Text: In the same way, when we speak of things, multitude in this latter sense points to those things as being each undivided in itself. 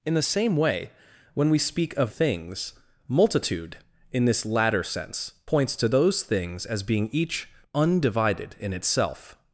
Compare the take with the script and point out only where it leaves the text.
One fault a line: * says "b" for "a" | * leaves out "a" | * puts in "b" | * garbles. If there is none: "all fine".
all fine